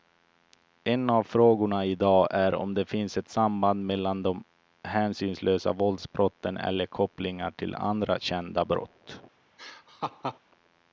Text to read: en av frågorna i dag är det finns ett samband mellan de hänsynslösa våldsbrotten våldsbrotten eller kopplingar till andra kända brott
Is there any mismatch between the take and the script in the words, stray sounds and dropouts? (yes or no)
yes